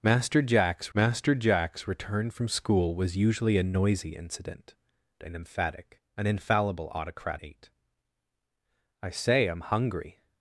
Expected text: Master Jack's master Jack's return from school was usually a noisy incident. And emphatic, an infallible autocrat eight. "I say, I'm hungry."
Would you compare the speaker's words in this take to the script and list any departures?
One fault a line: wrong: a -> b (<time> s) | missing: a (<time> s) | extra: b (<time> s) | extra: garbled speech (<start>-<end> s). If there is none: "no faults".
no faults